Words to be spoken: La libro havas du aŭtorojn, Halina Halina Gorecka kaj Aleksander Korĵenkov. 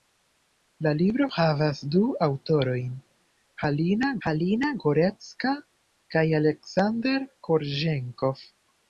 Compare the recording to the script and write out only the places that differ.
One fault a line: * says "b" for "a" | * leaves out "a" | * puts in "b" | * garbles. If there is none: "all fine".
all fine